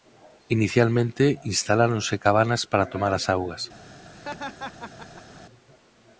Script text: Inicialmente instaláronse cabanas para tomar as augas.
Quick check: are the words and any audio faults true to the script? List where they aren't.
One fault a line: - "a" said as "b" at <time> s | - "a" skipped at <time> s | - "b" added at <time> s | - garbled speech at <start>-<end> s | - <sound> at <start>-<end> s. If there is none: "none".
- laugh at 4.1-5.4 s